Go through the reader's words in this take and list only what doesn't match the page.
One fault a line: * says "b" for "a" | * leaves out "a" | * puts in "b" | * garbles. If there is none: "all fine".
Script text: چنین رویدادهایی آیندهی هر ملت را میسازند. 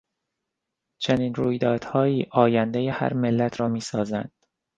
all fine